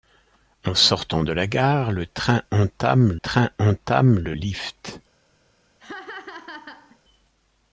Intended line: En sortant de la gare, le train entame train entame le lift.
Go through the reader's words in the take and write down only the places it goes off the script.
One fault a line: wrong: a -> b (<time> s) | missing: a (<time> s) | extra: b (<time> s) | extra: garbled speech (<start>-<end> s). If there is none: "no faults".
no faults